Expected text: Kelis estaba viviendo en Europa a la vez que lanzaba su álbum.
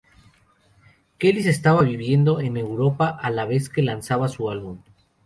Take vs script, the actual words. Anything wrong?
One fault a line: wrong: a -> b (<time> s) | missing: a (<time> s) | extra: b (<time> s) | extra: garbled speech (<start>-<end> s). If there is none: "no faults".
no faults